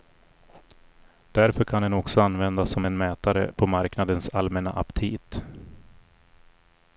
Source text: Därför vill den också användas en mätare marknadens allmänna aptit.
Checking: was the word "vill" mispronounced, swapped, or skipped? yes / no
yes